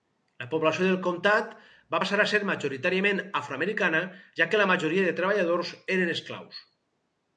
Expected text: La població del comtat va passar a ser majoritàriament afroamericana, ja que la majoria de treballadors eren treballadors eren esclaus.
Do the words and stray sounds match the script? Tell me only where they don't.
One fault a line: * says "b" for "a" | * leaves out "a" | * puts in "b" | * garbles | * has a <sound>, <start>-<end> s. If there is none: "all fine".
* leaves out "treballadors eren"